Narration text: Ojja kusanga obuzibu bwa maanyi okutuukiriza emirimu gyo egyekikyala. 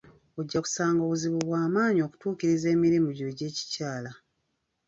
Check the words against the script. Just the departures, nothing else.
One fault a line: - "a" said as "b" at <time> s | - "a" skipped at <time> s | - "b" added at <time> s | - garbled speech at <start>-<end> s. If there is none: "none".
none